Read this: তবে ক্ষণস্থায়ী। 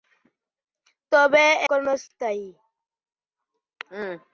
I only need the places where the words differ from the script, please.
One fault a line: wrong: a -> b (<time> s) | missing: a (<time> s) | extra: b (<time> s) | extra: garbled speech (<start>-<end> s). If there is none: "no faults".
no faults